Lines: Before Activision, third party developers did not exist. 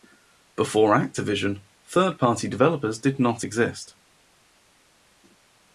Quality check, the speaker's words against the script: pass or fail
pass